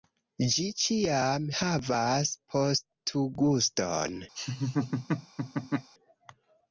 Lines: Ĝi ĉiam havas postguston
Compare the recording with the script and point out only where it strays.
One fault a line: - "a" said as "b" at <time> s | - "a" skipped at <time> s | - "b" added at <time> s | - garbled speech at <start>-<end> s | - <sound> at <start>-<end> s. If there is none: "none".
- laugh at 4.4-5.9 s